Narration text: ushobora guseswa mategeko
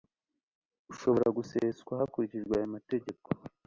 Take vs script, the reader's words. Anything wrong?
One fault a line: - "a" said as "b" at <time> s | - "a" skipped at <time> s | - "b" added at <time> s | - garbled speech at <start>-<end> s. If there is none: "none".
- "hakurikijwe aya" added at 2.0 s